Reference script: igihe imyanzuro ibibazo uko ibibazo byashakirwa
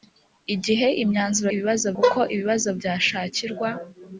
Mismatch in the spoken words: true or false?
false